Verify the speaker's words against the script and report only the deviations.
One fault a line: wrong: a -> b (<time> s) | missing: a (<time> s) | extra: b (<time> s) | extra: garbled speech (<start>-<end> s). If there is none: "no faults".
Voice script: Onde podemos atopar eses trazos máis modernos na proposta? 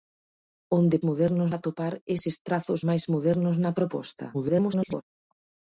wrong: podemos -> modernos (1.1 s)
extra: garbled speech (4.3-5.0 s)